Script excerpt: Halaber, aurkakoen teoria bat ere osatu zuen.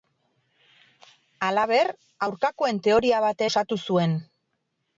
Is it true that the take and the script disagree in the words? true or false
true